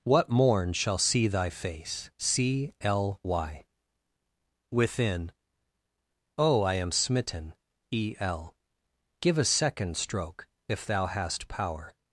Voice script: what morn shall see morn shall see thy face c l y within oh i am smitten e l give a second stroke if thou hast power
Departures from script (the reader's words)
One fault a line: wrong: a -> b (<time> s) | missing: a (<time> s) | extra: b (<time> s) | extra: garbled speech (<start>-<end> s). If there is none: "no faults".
missing: morn shall see (1.3 s)